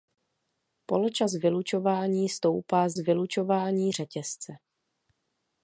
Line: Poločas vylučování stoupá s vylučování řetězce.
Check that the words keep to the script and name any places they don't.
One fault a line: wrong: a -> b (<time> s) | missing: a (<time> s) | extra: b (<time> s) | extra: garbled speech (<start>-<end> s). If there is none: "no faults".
no faults